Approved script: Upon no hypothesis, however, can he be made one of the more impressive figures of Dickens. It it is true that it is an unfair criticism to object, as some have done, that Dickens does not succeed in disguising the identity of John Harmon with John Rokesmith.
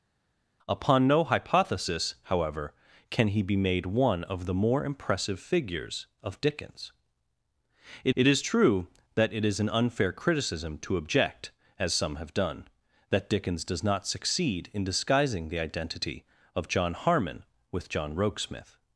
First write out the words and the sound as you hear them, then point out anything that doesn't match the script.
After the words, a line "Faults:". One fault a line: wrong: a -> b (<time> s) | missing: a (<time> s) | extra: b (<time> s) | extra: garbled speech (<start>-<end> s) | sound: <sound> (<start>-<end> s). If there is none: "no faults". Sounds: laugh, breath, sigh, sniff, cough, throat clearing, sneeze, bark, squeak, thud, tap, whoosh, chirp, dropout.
Upon no hypothesis, however, can he be made one of the more impressive figures of Dickens. It it is true that it is an unfair criticism to object, as some have done, that Dickens does not succeed in disguising the identity of John Harmon with John Rokesmith.
Faults:
no faults